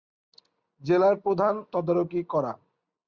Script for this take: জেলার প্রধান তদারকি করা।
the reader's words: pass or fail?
pass